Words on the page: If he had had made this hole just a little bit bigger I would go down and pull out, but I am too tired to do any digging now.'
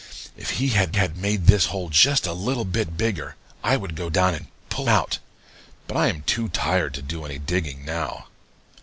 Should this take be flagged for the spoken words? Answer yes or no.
no